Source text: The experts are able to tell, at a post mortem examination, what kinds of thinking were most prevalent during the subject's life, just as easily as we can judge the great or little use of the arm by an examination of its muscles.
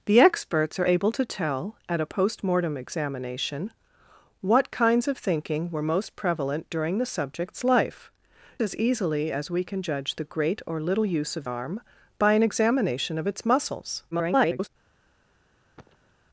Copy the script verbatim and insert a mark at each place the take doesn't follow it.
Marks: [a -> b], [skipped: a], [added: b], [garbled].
The experts are able to tell, at a post mortem examination, what kinds of thinking were most prevalent during the subject's life, [skipped: just] as easily as we can judge the great or little use of [skipped: the] arm by an examination of its muscles. [garbled]